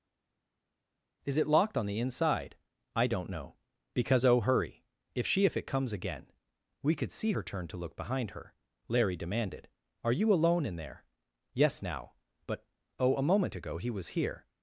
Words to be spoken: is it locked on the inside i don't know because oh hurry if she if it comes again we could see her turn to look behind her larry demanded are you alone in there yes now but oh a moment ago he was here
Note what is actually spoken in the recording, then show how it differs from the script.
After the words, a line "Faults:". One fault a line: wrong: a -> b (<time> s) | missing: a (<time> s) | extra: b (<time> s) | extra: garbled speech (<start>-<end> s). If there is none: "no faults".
is it locked on the inside i don't know because oh hurry if she if it comes again we could see her turn to look behind her larry demanded are you alone in there yes now but oh a moment ago he was here
Faults:
no faults